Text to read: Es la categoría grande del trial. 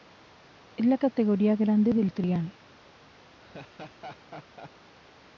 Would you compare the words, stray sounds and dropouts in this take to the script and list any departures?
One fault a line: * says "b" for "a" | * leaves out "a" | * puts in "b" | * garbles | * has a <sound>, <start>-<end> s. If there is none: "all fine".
* has a laugh, 3.4-4.7 s